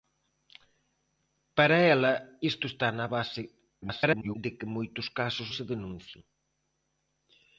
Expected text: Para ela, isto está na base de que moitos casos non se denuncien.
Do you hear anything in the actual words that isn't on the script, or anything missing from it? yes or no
yes